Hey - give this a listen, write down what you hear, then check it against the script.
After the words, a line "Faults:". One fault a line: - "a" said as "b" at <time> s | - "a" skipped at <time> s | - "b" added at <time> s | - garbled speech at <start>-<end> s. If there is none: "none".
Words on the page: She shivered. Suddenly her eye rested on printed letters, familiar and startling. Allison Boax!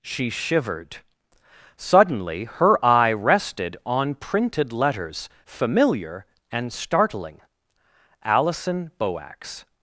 She shivered. Suddenly her eye rested on printed letters, familiar and startling. Allison Boax!
Faults:
none